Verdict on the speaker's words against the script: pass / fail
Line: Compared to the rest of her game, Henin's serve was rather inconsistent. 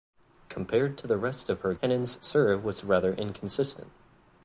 fail